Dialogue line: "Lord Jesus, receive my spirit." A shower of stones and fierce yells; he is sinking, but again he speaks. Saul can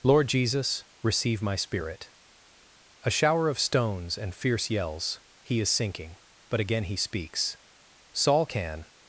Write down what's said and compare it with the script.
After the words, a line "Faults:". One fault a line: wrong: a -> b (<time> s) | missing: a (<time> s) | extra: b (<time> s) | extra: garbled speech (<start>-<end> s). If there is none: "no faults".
"Lord Jesus, receive my spirit." A shower of stones and fierce yells; he is sinking, but again he speaks. Saul can
Faults:
no faults